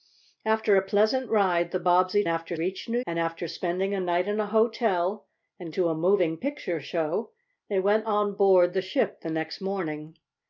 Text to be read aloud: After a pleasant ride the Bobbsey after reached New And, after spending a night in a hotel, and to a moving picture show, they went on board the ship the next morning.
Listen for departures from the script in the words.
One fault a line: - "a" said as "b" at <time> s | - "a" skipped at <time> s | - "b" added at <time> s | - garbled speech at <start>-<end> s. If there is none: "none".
none